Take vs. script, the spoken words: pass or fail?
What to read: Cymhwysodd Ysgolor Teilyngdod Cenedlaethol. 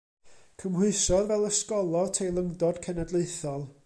fail